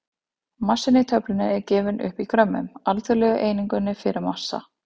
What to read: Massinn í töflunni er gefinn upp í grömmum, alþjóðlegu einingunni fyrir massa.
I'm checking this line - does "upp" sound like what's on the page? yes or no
yes